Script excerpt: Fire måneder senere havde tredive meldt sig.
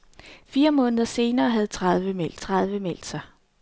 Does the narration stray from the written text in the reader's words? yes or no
yes